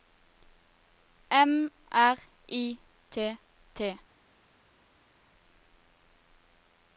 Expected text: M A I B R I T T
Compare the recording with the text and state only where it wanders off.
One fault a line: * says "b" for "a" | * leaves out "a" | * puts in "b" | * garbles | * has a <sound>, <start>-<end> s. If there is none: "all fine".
* leaves out "A I B"